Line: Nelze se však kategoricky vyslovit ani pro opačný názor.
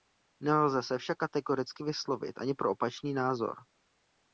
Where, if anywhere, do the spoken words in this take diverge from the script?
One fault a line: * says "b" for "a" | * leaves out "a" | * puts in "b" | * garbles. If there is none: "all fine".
all fine